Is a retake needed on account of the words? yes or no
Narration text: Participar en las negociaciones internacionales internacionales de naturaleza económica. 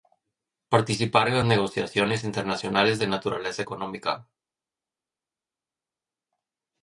yes